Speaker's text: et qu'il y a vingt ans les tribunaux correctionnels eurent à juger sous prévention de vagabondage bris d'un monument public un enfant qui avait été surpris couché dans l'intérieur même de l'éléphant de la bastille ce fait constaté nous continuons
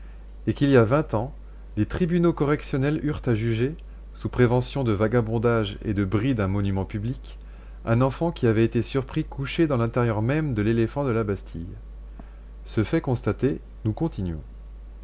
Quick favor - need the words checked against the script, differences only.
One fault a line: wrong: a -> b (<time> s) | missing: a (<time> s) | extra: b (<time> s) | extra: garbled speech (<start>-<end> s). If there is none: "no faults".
extra: et de (5.8 s)